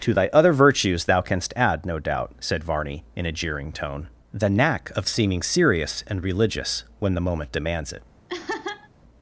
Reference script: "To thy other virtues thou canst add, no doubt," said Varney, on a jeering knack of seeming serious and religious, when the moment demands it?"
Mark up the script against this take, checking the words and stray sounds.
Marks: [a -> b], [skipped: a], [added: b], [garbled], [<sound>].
"To thy other virtues thou canst add, no doubt," said Varney, [on -> in] a jeering [added: tone the] knack of seeming serious and religious, when the moment demands it?" [laugh]